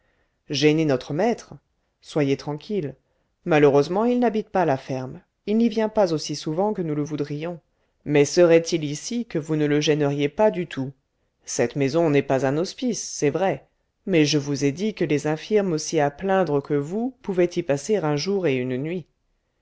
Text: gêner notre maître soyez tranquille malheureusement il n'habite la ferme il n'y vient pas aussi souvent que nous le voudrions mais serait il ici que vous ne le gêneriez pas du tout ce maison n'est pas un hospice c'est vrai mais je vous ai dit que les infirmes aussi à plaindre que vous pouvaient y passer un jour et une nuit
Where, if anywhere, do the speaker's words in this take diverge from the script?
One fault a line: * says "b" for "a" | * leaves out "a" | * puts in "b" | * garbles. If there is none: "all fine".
* puts in "pas"
* says "cette" for "ce"